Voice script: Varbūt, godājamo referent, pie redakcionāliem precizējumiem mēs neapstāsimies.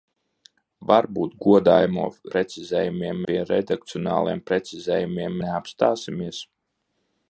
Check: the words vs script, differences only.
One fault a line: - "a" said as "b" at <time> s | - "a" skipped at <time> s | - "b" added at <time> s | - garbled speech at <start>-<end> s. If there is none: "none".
- "referent" said as "precizējumiem" at 2.4 s
- "mēs" skipped at 5.4 s